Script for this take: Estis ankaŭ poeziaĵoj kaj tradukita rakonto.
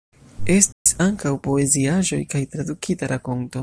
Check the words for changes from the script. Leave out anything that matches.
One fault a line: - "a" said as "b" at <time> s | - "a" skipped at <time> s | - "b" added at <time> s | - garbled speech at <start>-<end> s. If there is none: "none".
none